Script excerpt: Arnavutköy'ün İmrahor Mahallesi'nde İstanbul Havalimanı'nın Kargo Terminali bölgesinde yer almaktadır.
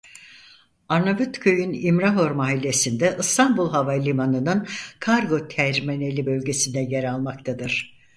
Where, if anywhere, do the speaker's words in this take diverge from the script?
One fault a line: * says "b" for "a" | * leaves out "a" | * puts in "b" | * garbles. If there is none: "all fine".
all fine